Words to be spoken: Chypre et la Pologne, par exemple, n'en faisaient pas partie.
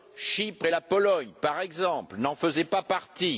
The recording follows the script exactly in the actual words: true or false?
true